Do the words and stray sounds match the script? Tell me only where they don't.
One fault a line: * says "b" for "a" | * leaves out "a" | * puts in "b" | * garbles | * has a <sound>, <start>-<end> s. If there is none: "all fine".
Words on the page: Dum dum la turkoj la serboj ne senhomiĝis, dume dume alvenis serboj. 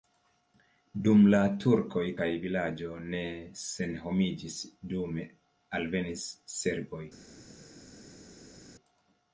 * leaves out "dum"
* says "vilaĝo" for "serboj"
* leaves out "dume"